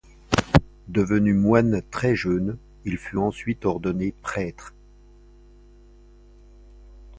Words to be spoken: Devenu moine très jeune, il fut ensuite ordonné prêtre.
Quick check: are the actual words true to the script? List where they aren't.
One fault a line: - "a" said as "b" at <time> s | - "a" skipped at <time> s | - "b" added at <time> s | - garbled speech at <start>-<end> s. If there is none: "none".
none